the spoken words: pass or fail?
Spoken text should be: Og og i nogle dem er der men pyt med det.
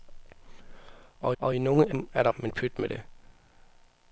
pass